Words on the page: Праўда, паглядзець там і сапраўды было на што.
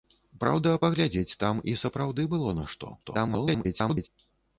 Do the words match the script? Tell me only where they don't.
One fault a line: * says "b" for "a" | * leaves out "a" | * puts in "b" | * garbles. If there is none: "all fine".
* garbles